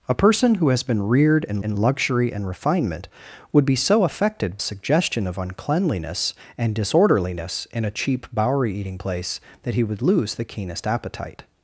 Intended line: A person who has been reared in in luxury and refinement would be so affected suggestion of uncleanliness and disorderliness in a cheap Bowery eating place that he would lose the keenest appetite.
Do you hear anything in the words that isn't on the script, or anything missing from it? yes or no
no